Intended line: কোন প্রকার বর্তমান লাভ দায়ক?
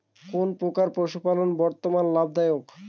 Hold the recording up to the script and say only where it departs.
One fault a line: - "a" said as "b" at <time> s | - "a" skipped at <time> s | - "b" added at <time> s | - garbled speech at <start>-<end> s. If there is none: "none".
- "পশুপালন" added at 1.0 s